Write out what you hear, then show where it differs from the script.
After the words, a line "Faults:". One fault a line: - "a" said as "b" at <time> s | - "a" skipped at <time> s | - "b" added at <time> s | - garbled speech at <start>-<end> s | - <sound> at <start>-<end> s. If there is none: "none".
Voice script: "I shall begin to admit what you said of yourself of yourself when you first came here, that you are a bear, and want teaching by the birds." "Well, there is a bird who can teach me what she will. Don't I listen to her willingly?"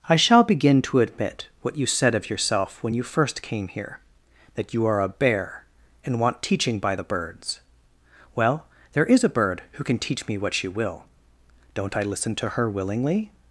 "I shall begin to admit what you said of yourself when you first came here, that you are a bear, and want teaching by the birds." "Well, there is a bird who can teach me what she will. Don't I listen to her willingly?"
Faults:
- "of yourself" skipped at 2.8 s